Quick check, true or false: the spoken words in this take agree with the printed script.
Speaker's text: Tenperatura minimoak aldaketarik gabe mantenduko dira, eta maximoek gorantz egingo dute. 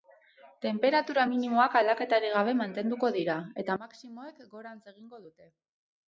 true